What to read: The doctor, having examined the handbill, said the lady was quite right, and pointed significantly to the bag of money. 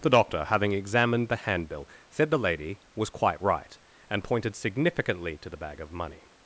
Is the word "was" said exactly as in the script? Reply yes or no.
yes